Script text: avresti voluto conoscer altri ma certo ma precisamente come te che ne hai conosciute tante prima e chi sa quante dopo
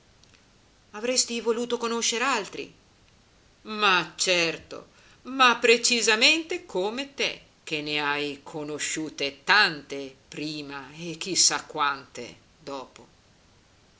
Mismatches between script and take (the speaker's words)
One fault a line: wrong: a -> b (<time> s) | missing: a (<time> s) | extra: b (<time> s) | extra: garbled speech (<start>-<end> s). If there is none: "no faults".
no faults